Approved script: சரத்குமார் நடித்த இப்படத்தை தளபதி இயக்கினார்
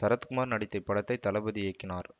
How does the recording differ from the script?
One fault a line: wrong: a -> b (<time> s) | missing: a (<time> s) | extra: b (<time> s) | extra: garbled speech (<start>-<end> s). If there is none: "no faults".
no faults